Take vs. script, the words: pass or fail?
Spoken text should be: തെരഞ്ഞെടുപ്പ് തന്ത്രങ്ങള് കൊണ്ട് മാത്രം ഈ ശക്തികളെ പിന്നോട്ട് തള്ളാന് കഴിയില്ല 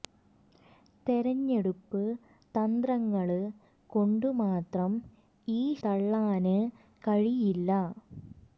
fail